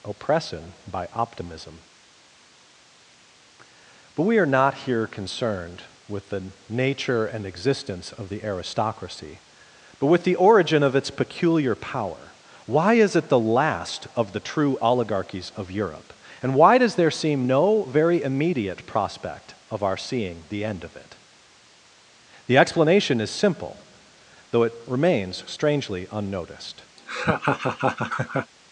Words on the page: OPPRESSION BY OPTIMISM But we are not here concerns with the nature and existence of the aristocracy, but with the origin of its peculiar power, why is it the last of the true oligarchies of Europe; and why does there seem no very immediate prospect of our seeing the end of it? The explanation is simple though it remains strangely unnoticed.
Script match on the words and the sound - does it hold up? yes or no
no